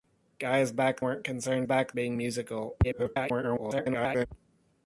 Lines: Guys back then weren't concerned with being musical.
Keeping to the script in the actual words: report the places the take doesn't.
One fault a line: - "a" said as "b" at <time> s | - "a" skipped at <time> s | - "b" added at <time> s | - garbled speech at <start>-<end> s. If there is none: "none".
- "then" skipped at 1.0 s
- "with" said as "back" at 1.6 s
- garbled speech at 2.8-4.3 s